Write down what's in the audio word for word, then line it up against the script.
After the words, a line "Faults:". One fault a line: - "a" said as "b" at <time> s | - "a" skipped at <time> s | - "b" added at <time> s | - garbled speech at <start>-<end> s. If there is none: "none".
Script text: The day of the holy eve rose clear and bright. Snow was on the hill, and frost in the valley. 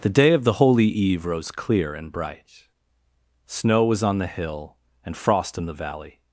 The day of the holy eve rose clear and bright. Snow was on the hill, and frost in the valley.
Faults:
none